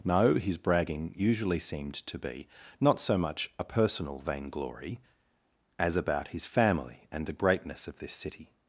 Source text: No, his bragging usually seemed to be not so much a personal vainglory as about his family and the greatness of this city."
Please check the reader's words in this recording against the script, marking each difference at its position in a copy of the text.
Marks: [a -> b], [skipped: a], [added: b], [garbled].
No, his bragging usually seemed to be not so much a personal vainglory as about his family and the greatness of this city."